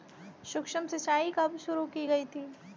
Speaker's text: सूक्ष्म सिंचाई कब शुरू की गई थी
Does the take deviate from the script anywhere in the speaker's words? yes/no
no